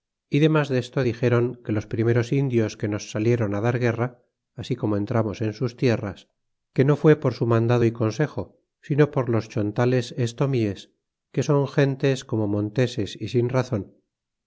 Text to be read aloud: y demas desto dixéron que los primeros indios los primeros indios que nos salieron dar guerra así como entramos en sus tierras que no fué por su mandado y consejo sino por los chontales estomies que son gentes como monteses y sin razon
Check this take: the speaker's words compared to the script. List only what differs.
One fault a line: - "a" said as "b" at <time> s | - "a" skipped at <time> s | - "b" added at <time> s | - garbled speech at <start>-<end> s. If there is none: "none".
- "los primeros indios" skipped at 2.7 s